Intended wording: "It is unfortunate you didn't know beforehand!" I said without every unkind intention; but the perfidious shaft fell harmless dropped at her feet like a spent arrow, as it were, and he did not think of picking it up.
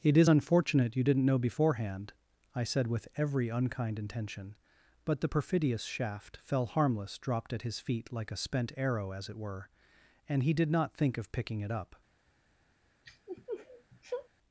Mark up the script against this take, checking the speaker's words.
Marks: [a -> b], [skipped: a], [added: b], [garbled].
"It is unfortunate you didn't know beforehand!" I said [without -> with] every unkind intention; but the perfidious shaft fell harmless dropped at [her -> his] feet like a spent arrow, as it were, and he did not think of picking it up.